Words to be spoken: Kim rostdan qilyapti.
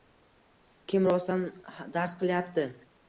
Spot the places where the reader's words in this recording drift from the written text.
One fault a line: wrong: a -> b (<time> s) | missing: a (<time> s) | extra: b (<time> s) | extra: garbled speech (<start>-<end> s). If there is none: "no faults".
extra: dars (1.9 s)